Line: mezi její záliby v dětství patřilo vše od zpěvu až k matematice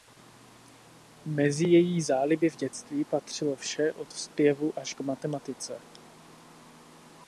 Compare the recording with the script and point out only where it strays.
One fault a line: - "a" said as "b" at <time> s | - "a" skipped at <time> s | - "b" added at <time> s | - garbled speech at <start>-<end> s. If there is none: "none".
none